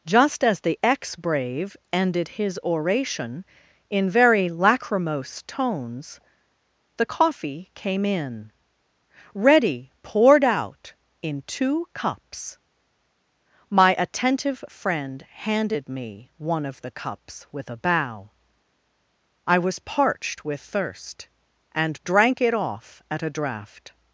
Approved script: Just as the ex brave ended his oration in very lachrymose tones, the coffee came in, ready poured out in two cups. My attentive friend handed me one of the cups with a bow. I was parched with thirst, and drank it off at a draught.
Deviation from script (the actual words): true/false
false